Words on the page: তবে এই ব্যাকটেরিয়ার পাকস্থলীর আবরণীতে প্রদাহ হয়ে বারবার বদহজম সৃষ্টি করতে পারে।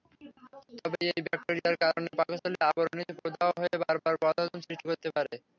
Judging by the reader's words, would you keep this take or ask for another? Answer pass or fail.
fail